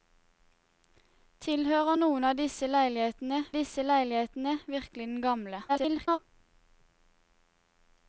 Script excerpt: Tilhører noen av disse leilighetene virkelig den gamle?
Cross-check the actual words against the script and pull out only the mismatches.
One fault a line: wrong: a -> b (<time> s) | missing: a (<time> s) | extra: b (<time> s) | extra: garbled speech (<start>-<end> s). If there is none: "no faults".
extra: disse leilighetene (3.6 s)
extra: garbled speech (5.7-6.2 s)